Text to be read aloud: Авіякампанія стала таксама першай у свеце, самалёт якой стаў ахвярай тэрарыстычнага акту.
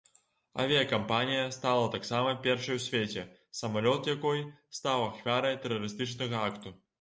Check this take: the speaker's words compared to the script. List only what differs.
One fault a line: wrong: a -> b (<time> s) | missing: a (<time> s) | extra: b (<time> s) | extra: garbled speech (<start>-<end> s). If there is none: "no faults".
no faults